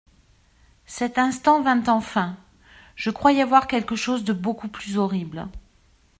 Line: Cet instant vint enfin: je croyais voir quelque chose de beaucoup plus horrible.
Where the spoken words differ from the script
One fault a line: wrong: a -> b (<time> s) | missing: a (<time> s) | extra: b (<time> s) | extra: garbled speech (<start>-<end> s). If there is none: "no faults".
no faults